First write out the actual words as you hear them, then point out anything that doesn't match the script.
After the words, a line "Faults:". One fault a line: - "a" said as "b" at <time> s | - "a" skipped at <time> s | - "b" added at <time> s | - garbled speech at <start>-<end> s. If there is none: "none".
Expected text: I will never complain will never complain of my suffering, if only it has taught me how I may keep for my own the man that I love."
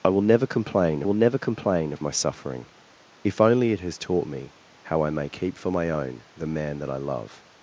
I will never complain will never complain of my suffering, if only it has taught me how I may keep for my own the man that I love."
Faults:
none